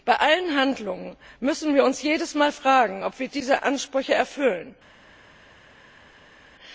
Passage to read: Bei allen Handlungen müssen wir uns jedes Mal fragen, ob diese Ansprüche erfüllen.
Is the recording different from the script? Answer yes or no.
yes